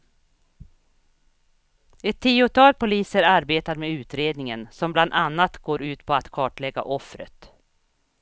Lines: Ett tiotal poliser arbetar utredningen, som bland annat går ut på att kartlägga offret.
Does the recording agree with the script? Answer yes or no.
no